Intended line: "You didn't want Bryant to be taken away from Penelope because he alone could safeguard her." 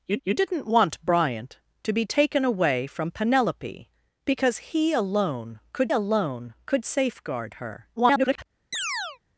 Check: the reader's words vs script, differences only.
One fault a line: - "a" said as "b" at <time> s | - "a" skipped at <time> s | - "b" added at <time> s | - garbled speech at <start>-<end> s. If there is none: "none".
- "you" added at 0.2 s
- "alone could" added at 5.9 s
- garbled speech at 8.0-8.5 s